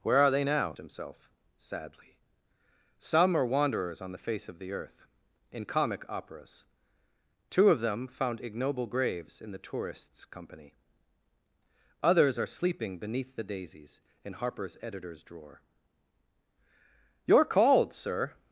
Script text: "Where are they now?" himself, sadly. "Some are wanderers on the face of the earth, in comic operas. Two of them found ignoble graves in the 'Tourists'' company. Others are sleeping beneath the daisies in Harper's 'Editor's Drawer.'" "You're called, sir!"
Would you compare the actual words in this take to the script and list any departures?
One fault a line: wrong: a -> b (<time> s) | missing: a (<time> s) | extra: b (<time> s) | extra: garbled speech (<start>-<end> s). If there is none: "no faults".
no faults